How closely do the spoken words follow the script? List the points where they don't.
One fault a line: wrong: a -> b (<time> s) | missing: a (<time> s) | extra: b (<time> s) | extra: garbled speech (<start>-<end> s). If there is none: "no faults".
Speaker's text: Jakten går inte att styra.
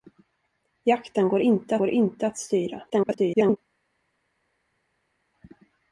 extra: går inte (1.8 s)
extra: garbled speech (2.9-3.6 s)